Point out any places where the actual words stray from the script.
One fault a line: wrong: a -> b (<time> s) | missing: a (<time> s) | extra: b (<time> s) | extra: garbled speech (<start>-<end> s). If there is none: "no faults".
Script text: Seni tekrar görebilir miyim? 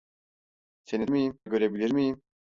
wrong: tekrar -> miyim (1.1 s)